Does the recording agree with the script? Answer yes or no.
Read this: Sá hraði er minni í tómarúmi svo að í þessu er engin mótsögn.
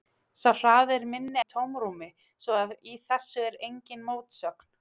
yes